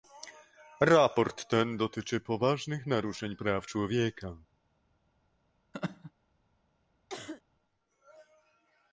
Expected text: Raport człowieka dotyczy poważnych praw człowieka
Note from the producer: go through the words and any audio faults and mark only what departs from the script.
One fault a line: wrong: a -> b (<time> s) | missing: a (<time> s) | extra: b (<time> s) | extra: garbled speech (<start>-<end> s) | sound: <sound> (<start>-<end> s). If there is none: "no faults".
wrong: człowieka -> ten (1.5 s)
extra: naruszeń (2.9 s)
sound: laugh (5.7-6.1 s)
sound: cough (7.1-7.4 s)